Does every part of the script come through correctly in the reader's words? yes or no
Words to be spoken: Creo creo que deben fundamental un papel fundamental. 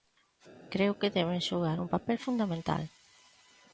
no